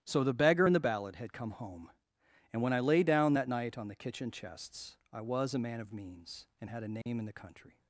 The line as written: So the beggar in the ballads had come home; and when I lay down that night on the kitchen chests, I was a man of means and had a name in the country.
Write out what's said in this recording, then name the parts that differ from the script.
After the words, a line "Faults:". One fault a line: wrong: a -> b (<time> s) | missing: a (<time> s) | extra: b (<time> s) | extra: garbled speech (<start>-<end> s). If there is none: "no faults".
So the beggar in the ballad had come home; and when I lay down that night on the kitchen chests, I was a man of means and had a name in the country.
Faults:
wrong: ballads -> ballad (0.8 s)